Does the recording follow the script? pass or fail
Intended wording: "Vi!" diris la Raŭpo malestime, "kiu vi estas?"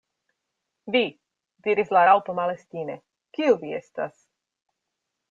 pass